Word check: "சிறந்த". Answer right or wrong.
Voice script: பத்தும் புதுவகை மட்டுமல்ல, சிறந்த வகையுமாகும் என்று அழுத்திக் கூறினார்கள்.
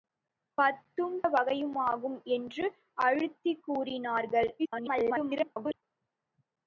wrong